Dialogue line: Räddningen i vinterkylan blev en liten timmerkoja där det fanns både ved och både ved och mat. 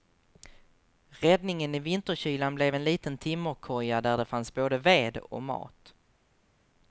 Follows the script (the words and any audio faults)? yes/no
no